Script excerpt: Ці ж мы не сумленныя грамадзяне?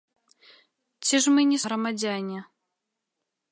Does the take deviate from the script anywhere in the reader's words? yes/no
yes